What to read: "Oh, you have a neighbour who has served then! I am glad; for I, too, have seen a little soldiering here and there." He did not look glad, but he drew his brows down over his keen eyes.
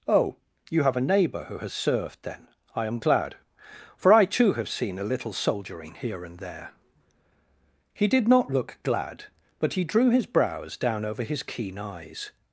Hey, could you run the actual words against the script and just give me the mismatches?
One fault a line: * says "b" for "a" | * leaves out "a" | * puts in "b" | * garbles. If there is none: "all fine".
all fine